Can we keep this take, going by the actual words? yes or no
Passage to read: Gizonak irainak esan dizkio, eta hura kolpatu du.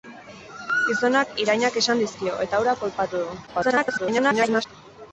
no